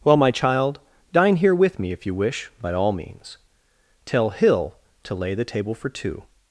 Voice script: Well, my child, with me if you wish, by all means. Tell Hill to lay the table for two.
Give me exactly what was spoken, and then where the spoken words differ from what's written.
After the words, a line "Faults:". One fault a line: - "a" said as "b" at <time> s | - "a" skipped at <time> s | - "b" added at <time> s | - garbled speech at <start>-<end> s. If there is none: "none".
Well, my child, dine here with me if you wish, by all means. Tell Hill to lay the table for two.
Faults:
- "dine here" added at 1.1 s